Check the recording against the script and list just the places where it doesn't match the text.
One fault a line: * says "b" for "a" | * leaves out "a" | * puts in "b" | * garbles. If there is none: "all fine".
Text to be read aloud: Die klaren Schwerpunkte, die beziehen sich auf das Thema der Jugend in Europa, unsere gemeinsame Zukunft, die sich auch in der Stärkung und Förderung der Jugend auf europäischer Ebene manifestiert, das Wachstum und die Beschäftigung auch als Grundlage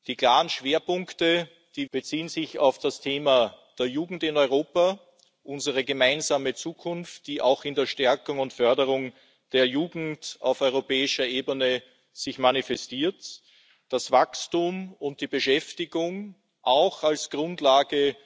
all fine